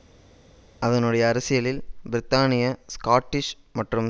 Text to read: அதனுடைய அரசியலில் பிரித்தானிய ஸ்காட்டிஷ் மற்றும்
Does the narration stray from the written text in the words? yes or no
no